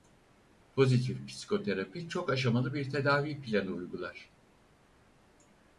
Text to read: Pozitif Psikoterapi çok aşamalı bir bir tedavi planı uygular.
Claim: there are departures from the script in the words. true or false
true